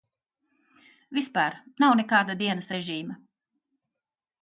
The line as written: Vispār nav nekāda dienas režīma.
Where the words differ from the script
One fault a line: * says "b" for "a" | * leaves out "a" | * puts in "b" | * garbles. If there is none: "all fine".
all fine